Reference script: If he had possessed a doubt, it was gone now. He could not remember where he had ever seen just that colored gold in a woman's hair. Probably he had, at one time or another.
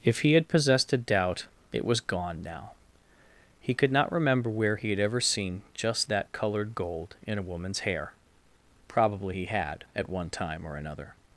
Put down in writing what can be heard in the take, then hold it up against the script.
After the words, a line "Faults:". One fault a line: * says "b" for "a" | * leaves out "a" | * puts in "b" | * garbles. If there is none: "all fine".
If he had possessed a doubt, it was gone now. He could not remember where he had ever seen just that colored gold in a woman's hair. Probably he had, at one time or another.
Faults:
all fine